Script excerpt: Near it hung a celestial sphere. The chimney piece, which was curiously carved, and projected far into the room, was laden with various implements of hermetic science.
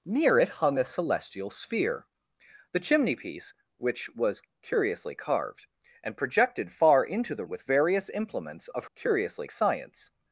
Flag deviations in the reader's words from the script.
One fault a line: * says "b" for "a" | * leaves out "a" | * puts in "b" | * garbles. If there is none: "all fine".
* leaves out "room was laden"
* says "curiously" for "hermetic"